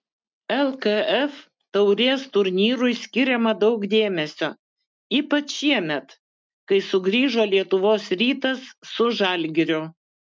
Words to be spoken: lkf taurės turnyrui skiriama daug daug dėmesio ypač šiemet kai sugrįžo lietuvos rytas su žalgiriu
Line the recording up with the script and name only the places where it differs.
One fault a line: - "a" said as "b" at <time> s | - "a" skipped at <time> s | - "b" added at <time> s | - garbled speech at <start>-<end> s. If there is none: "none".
- "daug" skipped at 3.9 s